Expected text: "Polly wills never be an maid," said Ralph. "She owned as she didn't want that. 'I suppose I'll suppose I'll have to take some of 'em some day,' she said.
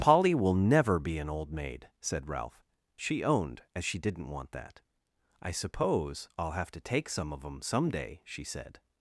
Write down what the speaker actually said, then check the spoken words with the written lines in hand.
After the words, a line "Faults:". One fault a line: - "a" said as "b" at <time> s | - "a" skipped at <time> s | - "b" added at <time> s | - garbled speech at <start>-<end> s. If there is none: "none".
"Polly will never be an old maid," said Ralph. "She owned as she didn't want that. 'I suppose I'll have to take some of 'em some day,' she said.
Faults:
- "wills" said as "will" at 0.3 s
- "old" added at 1.3 s
- "suppose I'll" skipped at 6.5 s